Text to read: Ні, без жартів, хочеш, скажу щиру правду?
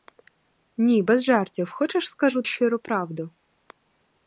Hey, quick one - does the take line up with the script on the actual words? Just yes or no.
yes